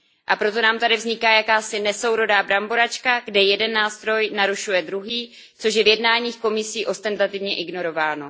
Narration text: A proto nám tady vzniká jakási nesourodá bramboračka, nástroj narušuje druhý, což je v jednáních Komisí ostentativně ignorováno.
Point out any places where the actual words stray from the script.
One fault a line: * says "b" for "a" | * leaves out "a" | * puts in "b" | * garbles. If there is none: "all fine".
* puts in "kde jeden"